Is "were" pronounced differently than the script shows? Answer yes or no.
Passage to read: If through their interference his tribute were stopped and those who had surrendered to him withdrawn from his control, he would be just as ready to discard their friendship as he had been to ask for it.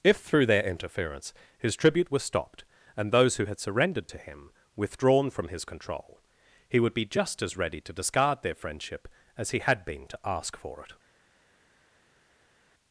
yes